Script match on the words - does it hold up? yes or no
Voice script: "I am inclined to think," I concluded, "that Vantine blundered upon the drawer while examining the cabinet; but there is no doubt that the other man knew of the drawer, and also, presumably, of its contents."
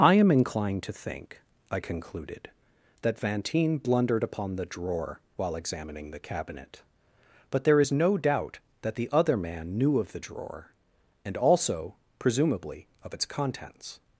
yes